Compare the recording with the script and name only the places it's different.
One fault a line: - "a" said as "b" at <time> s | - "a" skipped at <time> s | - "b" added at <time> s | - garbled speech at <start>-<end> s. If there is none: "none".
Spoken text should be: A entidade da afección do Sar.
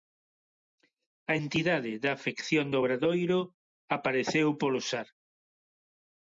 - "Obradoiro apareceu polo" added at 2.8 s